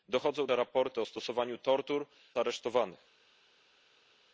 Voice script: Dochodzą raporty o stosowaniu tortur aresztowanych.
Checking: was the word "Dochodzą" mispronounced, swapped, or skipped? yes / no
no